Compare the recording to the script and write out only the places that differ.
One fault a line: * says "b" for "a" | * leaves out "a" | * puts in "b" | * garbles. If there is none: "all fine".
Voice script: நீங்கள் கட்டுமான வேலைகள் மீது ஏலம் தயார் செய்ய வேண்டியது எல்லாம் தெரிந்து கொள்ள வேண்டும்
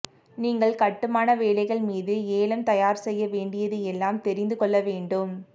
all fine